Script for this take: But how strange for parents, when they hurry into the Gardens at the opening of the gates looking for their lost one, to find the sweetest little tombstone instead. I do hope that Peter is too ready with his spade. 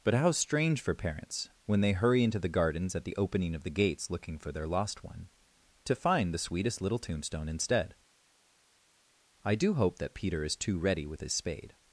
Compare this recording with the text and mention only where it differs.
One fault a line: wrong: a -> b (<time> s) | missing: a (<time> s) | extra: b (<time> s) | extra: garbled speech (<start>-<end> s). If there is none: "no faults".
no faults